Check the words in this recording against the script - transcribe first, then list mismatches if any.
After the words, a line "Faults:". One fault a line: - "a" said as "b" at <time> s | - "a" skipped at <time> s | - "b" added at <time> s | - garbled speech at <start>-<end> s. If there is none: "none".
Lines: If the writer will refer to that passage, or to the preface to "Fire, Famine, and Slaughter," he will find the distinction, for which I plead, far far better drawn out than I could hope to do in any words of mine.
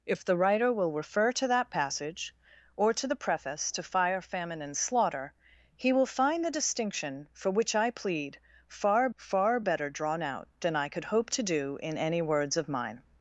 If the writer will refer to that passage, or to the preface to "Fire, Famine, and Slaughter," he will find the distinction, for which I plead, far far better drawn out than I could hope to do in any words of mine.
Faults:
none